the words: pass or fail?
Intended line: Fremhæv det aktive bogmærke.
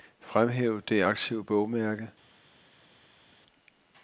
pass